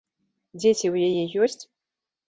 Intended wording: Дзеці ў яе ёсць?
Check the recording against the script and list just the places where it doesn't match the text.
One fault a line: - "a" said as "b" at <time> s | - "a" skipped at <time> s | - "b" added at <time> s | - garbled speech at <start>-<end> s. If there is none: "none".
none